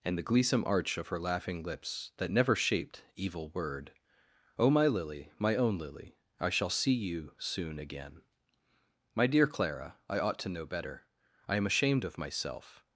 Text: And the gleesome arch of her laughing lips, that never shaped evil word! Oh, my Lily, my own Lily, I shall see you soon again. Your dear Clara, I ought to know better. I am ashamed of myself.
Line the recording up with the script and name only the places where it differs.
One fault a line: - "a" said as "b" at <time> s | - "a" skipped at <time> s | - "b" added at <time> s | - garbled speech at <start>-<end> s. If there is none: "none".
- "Your" said as "My" at 9.1 s